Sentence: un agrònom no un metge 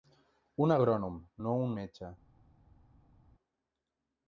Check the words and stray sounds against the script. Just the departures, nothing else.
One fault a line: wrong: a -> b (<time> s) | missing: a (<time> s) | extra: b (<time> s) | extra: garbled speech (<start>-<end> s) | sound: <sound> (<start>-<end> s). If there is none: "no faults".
no faults